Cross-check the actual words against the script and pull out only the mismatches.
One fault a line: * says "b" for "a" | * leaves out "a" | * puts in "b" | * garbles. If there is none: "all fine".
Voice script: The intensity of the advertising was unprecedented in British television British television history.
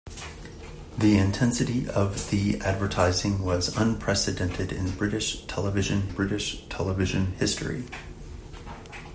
all fine